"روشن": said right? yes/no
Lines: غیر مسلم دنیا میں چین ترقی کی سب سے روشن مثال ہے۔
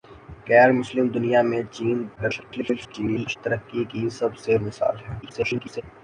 no